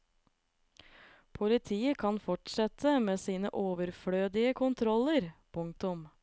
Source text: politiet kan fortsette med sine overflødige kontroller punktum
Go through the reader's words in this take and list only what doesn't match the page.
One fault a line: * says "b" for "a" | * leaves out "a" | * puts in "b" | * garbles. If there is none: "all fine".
all fine